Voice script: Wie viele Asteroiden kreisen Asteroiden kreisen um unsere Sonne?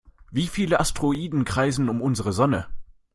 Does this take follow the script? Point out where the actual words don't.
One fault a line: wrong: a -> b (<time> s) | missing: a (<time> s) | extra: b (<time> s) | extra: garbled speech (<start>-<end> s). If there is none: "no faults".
missing: Asteroiden kreisen (1.9 s)